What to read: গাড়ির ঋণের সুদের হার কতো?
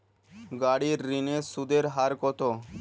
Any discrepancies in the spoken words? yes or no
no